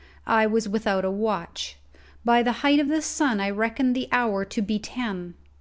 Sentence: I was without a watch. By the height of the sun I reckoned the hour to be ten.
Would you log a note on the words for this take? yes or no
no